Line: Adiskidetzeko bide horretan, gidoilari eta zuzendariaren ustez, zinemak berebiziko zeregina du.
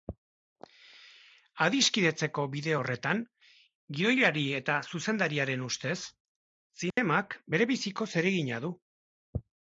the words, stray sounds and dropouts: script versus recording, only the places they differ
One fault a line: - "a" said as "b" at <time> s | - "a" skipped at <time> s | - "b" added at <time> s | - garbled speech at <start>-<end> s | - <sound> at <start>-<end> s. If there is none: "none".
- dropout at 6.9-7.0 s